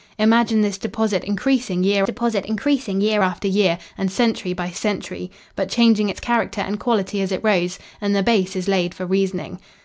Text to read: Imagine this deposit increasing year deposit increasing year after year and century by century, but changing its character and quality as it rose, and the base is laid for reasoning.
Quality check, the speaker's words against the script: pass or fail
pass